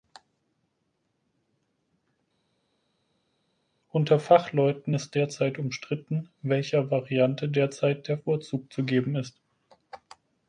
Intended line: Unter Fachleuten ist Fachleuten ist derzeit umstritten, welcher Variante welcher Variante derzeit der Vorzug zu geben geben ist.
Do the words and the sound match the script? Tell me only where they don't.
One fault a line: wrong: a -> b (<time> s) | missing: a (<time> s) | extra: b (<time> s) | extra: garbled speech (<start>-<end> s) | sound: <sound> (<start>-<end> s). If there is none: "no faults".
missing: Fachleuten ist (5.2 s)
missing: welcher Variante (7.5 s)
missing: geben (9.1 s)